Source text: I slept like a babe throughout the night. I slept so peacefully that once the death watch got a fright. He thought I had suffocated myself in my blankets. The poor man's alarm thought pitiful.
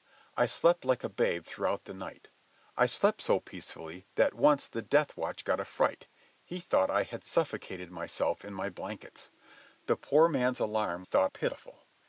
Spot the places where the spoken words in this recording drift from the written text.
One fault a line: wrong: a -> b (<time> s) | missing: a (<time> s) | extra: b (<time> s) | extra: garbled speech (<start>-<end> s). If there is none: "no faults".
no faults